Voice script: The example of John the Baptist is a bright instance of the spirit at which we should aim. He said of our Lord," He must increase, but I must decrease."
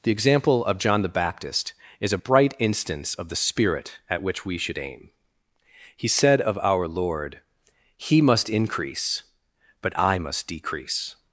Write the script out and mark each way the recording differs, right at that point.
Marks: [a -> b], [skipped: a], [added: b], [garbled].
The example of John the Baptist is a bright instance of the spirit at which we should aim. He said of our Lord," He must increase, but I must decrease."